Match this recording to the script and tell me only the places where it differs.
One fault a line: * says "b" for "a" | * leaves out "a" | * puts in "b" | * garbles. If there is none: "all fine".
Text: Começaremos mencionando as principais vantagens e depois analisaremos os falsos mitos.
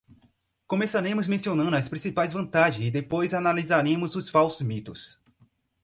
all fine